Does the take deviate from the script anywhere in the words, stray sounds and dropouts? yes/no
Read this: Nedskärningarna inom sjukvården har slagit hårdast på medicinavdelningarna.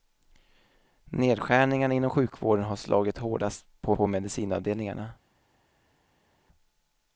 yes